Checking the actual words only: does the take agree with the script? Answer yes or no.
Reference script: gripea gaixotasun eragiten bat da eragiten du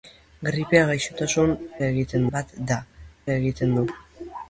yes